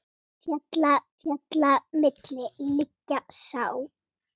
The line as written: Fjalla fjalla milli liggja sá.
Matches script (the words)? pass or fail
pass